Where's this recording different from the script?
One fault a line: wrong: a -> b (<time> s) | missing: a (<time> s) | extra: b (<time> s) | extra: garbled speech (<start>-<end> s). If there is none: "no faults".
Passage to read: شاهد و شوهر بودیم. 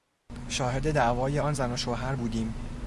extra: دعوای آن زن (0.9 s)